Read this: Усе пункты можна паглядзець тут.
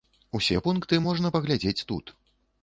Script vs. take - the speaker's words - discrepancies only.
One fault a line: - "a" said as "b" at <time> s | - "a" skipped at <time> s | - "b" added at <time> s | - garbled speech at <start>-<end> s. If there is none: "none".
none